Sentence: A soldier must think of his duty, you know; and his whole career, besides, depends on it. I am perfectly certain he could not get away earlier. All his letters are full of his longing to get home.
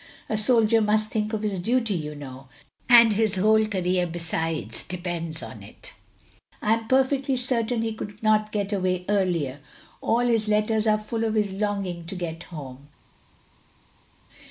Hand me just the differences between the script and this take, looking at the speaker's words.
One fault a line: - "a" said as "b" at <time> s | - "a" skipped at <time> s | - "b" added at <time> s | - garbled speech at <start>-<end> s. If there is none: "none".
none